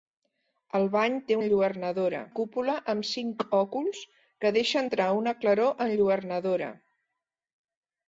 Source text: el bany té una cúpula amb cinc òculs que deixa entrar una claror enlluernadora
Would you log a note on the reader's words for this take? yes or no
yes